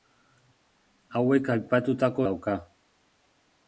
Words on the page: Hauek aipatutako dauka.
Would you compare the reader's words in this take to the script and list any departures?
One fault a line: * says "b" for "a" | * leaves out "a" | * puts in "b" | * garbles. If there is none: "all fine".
all fine